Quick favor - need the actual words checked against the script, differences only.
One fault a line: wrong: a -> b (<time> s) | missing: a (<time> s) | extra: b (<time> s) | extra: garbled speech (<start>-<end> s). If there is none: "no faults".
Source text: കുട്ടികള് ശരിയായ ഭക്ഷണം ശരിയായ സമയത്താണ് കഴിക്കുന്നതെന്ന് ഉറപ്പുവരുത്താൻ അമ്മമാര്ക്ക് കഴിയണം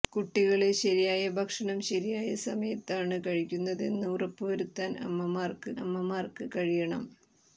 extra: അമ്മമാര്ക്ക് (5.8 s)